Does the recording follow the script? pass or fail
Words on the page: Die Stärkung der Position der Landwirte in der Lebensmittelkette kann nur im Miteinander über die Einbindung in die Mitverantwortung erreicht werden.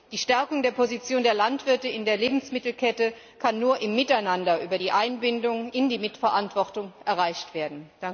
pass